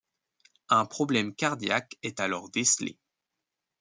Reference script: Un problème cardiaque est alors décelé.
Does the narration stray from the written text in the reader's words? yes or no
no